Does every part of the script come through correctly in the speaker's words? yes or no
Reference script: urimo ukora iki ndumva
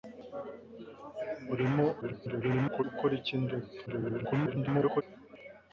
no